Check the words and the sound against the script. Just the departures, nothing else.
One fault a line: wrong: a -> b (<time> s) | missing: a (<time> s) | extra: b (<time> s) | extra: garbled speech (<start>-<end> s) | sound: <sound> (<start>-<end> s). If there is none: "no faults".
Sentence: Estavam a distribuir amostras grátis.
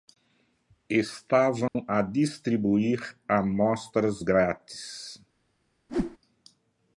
sound: dropout (1.7-1.8 s)
sound: whoosh (5.9-6.2 s)